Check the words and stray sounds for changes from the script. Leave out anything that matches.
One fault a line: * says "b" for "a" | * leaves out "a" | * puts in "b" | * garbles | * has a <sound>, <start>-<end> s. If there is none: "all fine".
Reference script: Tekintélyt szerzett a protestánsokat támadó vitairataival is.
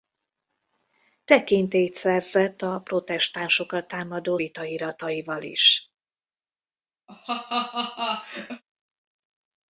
* has a laugh, 7.1-8.6 s